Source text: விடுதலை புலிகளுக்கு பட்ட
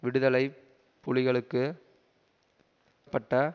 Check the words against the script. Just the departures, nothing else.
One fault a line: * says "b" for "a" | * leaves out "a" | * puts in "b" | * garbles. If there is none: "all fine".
all fine